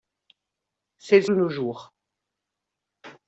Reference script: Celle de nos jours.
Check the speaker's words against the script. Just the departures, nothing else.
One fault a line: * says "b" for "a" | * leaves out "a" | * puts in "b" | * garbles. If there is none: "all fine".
all fine